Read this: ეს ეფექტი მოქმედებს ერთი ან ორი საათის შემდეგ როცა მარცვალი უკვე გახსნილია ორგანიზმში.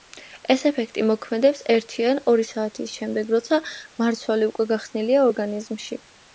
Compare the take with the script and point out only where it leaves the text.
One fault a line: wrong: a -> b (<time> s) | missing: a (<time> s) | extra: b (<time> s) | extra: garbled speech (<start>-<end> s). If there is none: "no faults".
no faults